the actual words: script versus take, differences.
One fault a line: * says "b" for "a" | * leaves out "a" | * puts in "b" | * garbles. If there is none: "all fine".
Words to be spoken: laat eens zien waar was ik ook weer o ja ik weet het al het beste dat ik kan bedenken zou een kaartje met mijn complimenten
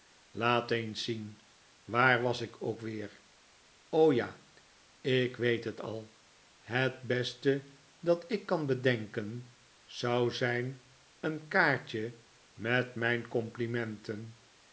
* puts in "zijn"